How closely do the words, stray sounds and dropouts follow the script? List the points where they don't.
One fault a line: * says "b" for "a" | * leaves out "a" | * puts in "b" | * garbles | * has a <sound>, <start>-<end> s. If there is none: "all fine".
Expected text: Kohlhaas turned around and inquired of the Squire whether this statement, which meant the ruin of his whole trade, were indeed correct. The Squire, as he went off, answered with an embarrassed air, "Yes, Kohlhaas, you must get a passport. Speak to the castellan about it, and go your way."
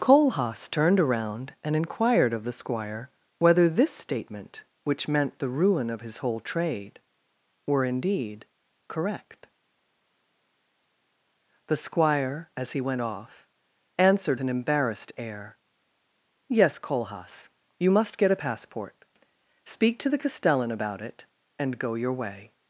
* leaves out "with"